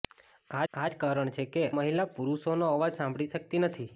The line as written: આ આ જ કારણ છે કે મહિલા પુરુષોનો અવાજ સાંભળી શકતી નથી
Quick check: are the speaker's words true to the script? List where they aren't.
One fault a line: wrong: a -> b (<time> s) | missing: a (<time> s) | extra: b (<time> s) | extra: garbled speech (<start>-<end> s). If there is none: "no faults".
no faults